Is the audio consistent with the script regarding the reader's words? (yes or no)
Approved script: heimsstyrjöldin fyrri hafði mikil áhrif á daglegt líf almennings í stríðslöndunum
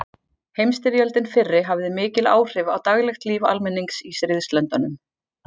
yes